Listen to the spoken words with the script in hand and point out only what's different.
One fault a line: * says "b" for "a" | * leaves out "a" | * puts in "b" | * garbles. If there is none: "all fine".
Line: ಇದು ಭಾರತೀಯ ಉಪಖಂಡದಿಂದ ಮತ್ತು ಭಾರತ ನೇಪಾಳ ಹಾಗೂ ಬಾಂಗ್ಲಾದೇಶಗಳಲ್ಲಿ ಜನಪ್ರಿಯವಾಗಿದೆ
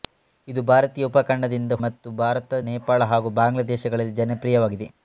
all fine